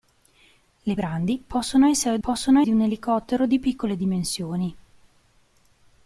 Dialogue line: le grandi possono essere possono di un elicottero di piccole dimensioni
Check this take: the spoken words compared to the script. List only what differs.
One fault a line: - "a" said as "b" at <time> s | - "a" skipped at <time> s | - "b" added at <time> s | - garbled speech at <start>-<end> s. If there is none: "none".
none